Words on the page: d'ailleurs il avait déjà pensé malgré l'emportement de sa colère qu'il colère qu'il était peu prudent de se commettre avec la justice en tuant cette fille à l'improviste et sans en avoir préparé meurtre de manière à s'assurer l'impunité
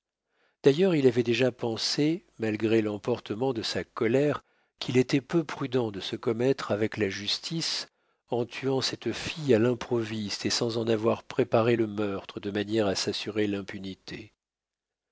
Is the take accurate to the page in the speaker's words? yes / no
no